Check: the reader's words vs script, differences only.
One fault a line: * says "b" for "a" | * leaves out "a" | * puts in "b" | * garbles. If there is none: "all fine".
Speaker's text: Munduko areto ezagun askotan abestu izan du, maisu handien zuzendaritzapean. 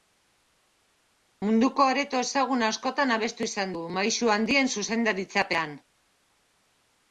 all fine